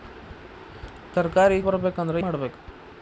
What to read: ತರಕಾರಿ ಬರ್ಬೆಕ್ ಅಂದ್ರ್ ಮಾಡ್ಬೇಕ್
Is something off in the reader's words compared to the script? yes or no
no